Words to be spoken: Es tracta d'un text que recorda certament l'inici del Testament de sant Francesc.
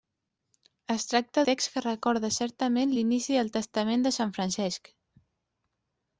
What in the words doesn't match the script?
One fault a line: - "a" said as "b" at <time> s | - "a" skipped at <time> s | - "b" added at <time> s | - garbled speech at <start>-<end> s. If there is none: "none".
- "d'un" skipped at 1.4 s